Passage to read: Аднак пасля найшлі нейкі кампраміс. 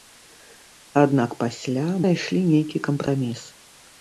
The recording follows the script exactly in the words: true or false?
true